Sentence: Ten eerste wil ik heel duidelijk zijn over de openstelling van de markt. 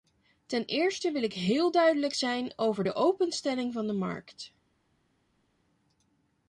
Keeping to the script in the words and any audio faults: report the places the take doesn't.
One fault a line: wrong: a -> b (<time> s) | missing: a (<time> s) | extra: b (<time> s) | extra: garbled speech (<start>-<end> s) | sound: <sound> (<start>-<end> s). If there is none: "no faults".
no faults